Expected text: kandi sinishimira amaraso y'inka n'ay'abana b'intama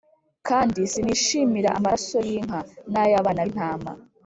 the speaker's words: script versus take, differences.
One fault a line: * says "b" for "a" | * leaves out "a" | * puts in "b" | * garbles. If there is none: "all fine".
all fine